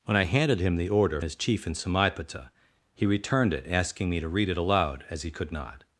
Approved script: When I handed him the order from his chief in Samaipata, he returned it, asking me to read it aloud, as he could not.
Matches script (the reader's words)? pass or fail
fail